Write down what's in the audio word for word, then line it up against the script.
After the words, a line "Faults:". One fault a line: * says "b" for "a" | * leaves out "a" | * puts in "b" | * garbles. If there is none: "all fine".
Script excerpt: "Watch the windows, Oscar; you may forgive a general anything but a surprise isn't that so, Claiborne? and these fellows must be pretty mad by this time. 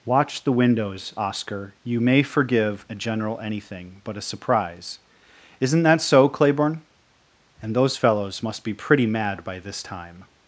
"Watch the windows, Oscar; you may forgive a general anything but a surprise isn't that so, Claiborne? and those fellows must be pretty mad by this time.
Faults:
* says "those" for "these"